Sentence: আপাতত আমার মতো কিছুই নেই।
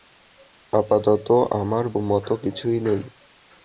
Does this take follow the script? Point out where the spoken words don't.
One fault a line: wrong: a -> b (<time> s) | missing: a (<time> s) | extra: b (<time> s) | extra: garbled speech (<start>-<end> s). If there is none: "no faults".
no faults